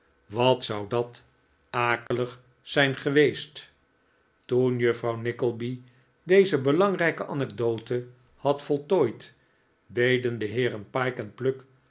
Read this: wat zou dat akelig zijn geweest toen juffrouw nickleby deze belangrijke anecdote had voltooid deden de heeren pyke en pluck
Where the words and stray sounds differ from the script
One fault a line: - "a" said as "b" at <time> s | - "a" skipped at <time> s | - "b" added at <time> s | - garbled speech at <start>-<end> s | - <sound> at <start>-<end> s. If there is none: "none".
- dropout at 2.1-2.1 s